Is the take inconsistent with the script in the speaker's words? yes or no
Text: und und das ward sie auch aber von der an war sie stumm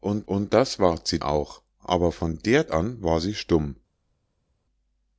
no